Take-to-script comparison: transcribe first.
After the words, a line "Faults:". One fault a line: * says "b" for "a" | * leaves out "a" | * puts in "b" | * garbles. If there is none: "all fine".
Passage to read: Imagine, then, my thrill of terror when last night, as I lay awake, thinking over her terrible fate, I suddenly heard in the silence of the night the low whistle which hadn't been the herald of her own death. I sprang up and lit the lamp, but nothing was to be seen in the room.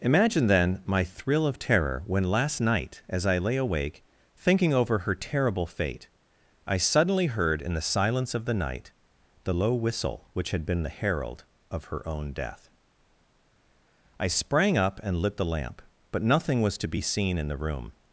Imagine, then, my thrill of terror when last night, as I lay awake, thinking over her terrible fate, I suddenly heard in the silence of the night the low whistle which had been the herald of her own death. I sprang up and lit the lamp, but nothing was to be seen in the room.
Faults:
* says "had" for "hadn't"